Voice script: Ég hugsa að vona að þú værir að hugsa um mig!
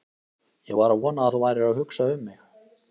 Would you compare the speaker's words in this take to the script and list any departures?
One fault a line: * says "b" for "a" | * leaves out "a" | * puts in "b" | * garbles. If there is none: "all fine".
* says "var" for "hugsa"